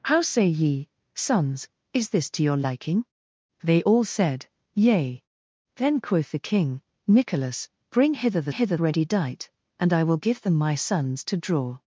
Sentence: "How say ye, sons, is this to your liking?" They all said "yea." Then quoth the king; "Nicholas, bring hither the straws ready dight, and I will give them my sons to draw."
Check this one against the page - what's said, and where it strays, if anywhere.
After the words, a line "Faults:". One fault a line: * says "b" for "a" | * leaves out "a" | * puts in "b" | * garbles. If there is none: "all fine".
"How say ye, sons, is this to your liking?" They all said "yea." Then quoth the king; "Nicholas, bring hither the hither ready dight, and I will give them my sons to draw."
Faults:
* says "hither" for "straws"